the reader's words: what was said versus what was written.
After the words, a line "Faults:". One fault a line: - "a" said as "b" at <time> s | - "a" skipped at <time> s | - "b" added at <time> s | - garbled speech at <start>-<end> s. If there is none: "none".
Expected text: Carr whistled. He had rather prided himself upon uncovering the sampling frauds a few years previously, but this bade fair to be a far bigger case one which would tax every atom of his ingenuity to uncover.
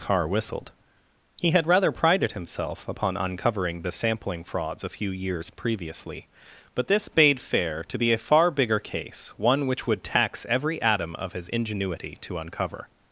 Carr whistled. He had rather prided himself upon uncovering the sampling frauds a few years previously, but this bade fair to be a far bigger case one which would tax every atom of his ingenuity to uncover.
Faults:
none